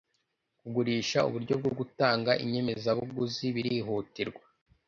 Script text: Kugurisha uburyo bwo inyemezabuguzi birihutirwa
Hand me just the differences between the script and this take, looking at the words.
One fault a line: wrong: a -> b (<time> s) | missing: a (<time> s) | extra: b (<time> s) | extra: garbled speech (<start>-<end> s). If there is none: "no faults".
extra: gutanga (1.8 s)